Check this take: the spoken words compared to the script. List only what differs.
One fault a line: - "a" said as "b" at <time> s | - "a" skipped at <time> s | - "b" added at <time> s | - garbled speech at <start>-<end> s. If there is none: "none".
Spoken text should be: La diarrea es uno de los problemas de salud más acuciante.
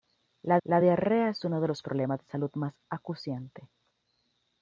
- "la" added at 0.6 s